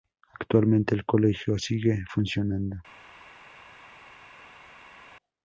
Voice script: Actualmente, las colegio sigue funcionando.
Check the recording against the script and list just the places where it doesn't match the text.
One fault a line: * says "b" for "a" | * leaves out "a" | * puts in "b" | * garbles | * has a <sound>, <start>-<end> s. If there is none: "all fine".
* says "el" for "las"